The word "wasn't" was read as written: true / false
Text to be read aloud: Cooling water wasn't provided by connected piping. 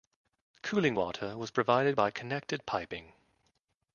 false